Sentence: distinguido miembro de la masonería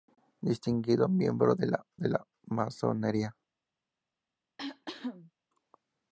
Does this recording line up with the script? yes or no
no